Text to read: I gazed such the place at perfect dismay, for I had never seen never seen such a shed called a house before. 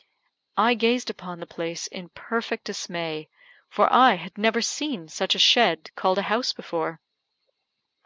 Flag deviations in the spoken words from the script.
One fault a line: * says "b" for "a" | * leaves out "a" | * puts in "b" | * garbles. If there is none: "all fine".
* says "upon" for "such"
* says "in" for "at"
* leaves out "never seen"